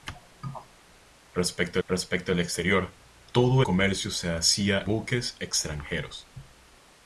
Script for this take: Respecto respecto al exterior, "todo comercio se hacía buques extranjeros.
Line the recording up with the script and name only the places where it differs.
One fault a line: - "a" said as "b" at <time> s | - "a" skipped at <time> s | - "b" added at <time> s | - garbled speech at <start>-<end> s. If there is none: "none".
none